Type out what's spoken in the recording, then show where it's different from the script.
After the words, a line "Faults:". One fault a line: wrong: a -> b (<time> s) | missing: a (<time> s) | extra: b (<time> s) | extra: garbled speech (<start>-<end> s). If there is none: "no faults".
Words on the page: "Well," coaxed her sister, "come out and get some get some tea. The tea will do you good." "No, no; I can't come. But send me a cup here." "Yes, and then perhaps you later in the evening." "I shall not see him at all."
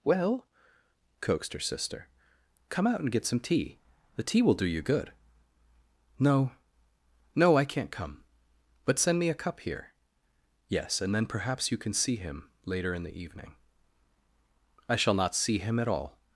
"Well," coaxed her sister, "come out and get some tea. The tea will do you good." "No, no; I can't come. But send me a cup here." "Yes, and then perhaps you can see him later in the evening." "I shall not see him at all."
Faults:
missing: get some (3.4 s)
extra: can see him (11.8 s)